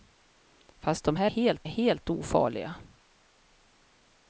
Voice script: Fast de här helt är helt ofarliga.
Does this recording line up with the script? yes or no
yes